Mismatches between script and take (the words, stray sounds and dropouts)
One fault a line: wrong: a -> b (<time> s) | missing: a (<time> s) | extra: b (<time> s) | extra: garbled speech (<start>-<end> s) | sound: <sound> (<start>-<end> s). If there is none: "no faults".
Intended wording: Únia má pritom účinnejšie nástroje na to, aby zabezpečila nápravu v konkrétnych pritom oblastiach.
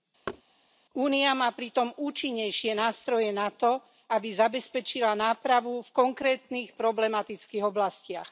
sound: thud (0.3-0.4 s)
wrong: pritom -> problematických (6.7 s)